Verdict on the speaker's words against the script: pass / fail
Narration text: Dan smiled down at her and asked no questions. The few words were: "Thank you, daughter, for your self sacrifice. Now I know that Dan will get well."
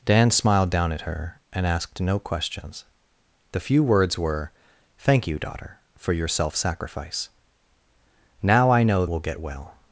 fail